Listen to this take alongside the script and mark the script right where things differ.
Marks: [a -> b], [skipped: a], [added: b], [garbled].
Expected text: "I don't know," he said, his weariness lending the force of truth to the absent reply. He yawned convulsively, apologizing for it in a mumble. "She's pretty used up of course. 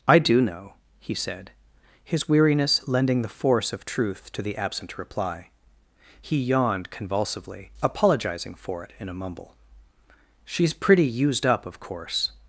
"I [don't -> do] know," he said, his weariness lending the force of truth to the absent reply. He yawned convulsively, apologizing for it in a mumble. "She's pretty used up of course.